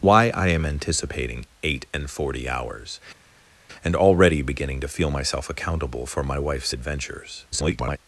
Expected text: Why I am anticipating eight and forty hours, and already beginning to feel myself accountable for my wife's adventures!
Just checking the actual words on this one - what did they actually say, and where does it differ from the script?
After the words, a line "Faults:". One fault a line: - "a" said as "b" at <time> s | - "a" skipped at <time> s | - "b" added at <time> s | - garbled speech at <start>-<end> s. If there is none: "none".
Why I am anticipating eight and forty hours, and already beginning to feel myself accountable for my wife's adventures! [garbled]
Faults:
- garbled speech at 7.5-8.0 s